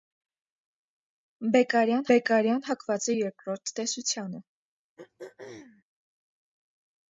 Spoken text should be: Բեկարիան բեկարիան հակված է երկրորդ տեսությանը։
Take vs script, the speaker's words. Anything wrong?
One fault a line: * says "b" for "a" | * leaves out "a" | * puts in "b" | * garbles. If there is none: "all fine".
all fine